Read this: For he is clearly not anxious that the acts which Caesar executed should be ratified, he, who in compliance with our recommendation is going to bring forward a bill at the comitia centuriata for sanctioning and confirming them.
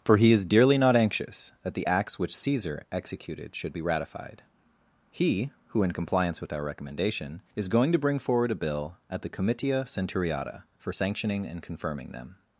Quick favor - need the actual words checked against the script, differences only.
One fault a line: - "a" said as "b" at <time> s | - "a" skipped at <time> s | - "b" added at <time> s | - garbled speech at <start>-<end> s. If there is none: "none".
- "clearly" said as "dearly" at 0.5 s